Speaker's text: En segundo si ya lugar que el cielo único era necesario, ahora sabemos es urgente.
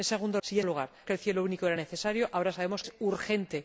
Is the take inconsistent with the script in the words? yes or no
no